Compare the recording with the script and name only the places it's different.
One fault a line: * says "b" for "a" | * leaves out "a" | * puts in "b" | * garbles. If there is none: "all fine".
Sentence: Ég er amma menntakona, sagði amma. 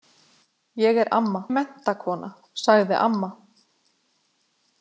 all fine